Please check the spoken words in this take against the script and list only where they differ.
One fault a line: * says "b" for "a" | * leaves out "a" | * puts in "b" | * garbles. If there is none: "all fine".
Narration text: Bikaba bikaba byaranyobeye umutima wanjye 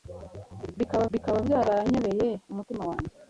all fine